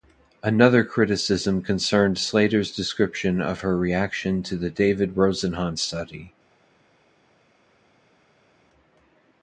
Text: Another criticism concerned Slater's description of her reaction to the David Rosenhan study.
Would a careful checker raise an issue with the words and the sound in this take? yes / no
no